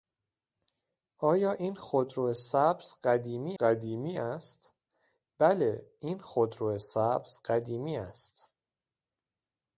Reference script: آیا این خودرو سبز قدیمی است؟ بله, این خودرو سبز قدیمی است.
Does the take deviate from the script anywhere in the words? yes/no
yes